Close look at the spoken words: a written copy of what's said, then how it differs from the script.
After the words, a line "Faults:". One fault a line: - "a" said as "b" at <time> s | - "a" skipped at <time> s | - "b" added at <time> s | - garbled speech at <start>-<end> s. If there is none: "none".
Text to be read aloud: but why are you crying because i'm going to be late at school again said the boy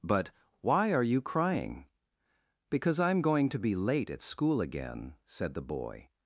but why are you crying because i'm going to be late at school again said the boy
Faults:
none